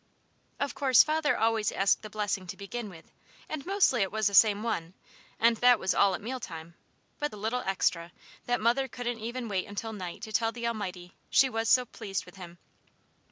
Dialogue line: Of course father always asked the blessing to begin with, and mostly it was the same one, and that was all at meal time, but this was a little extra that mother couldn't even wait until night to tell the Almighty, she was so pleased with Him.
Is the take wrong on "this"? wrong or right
wrong